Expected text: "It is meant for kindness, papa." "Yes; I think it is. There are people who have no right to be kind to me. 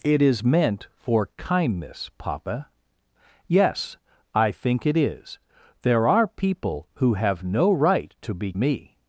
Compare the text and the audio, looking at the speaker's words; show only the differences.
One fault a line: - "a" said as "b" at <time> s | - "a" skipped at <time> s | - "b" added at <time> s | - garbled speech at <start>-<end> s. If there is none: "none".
- "kind to" skipped at 8.5 s